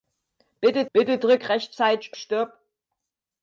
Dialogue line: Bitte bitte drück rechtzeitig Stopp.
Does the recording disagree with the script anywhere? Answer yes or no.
no